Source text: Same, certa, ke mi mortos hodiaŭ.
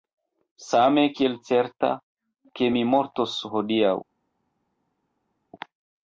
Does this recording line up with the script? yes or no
no